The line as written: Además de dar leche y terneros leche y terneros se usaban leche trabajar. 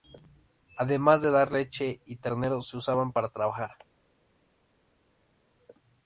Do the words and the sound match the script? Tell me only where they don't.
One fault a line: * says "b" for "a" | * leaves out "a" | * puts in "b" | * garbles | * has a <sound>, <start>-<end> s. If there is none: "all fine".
* leaves out "leche y terneros"
* says "para" for "leche"